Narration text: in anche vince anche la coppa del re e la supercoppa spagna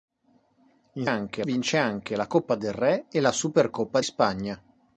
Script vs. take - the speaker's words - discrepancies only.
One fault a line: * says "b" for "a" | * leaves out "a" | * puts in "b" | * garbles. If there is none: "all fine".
all fine